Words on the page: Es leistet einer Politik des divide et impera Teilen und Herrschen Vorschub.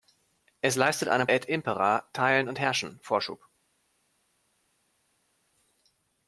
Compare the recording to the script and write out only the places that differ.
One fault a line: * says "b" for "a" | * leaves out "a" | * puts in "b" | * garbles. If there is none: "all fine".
* leaves out "Politik des divide"